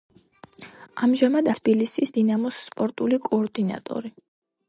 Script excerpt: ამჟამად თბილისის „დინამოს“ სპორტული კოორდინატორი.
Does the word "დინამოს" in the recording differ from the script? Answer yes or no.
no